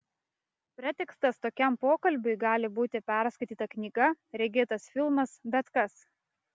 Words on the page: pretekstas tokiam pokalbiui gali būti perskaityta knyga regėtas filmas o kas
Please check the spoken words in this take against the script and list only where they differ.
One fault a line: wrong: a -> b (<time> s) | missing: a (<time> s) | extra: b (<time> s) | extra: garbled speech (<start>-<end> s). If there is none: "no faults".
wrong: o -> bet (5.6 s)